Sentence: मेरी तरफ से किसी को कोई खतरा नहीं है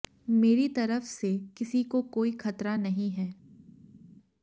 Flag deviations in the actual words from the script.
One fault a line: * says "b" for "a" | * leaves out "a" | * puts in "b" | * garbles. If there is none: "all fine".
all fine